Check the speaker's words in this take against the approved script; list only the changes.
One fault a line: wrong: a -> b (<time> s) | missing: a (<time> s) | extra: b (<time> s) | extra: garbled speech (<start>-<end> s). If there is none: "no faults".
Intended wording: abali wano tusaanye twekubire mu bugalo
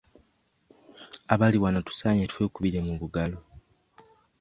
no faults